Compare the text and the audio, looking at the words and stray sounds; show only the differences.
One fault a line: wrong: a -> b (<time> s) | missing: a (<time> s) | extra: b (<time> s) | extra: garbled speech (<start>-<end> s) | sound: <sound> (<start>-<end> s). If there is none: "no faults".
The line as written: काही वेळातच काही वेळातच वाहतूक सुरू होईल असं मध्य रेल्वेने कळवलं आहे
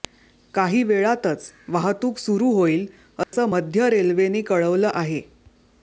missing: काही वेळातच (1.5 s)
sound: dropout (3.2-3.3 s)